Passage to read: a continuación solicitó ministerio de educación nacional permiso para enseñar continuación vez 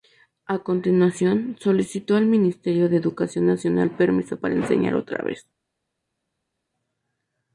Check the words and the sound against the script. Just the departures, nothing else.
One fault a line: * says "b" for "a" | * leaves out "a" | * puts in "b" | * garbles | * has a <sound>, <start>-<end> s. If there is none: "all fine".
* puts in "al"
* says "otra" for "continuación"